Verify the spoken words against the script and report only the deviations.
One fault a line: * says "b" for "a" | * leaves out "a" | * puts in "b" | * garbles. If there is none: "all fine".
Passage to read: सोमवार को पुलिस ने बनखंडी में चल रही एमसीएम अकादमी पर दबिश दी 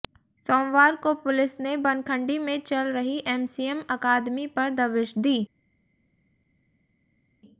all fine